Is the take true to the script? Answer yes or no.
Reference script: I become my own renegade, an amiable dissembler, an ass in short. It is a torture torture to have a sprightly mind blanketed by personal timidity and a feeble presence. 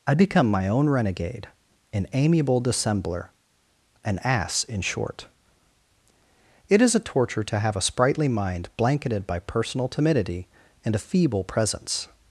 no